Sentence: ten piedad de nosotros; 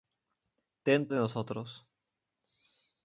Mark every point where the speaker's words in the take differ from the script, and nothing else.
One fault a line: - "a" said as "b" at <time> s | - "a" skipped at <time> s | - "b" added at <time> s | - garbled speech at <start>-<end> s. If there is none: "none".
- "piedad" skipped at 1.1 s